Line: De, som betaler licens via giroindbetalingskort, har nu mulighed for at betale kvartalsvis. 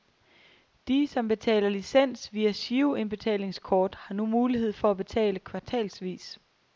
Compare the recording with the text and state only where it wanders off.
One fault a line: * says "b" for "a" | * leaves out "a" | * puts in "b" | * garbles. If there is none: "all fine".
all fine